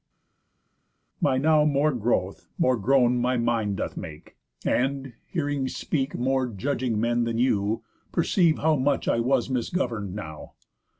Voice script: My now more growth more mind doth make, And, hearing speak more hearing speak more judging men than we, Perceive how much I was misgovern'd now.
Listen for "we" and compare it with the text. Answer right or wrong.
wrong